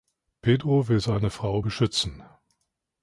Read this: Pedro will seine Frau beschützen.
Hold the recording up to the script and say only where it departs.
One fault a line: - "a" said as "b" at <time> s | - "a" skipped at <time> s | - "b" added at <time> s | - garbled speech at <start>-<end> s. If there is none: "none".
none